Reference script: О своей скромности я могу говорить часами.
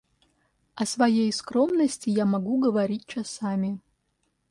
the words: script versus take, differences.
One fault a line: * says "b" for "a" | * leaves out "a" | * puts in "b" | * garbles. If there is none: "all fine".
all fine